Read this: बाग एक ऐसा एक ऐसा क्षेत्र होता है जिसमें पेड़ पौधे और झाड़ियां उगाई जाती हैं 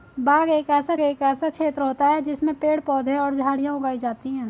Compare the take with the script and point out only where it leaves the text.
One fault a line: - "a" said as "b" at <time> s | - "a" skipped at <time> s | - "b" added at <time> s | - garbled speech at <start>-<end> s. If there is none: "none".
none